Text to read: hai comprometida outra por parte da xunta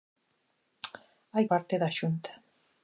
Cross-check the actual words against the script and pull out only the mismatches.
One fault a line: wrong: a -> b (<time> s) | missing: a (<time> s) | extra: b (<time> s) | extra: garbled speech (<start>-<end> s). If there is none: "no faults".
missing: comprometida outra por (1.4 s)